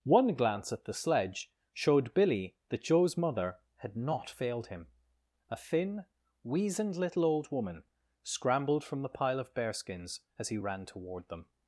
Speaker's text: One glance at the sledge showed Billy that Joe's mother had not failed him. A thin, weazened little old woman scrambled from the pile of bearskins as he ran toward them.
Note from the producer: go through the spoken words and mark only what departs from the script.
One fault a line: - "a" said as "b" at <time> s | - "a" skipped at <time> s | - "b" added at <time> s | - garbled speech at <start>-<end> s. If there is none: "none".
none